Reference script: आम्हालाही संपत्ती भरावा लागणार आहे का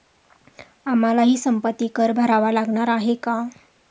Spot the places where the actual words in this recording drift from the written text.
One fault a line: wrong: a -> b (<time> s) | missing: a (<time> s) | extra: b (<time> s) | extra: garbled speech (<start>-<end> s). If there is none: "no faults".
extra: कर (1.9 s)